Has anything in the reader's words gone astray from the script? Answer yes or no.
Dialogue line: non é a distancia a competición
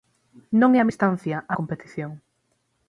no